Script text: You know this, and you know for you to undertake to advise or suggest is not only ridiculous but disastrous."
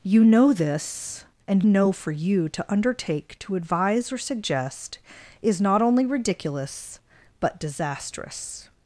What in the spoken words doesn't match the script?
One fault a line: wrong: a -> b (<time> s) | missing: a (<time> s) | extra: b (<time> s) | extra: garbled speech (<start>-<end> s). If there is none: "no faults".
missing: you (1.6 s)